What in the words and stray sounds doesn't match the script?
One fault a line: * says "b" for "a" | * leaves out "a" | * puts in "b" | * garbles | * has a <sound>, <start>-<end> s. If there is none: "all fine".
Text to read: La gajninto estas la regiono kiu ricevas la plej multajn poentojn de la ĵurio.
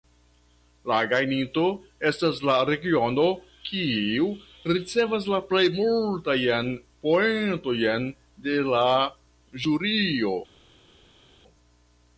all fine